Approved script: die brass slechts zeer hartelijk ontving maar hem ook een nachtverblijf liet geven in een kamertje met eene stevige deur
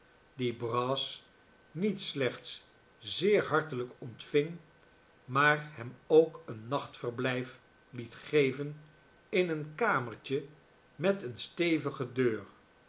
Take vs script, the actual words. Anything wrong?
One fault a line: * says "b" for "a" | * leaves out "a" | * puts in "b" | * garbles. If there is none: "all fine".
* puts in "niet"